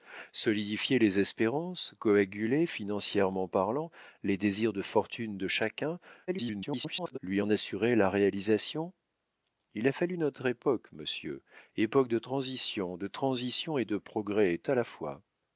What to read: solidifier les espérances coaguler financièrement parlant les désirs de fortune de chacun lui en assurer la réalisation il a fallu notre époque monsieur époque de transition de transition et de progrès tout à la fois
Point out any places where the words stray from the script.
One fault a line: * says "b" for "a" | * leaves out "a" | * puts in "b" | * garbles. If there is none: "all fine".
* garbles
* leaves out "tout"